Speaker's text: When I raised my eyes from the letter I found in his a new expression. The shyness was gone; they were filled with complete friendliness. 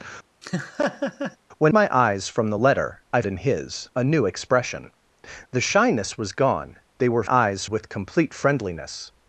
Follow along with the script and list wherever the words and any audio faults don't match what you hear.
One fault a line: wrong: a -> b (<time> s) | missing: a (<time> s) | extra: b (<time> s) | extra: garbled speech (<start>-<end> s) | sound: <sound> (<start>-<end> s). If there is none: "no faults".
sound: laugh (0.4-1.4 s)
missing: I raised (1.7 s)
missing: found (3.2 s)
wrong: filled -> eyes (7.3 s)